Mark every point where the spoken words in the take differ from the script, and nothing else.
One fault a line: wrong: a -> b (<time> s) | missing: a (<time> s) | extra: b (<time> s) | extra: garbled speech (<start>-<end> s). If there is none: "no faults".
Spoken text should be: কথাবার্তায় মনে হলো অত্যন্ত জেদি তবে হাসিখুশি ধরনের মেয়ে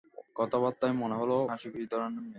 missing: অত্যন্ত জেদি তবে (1.4 s)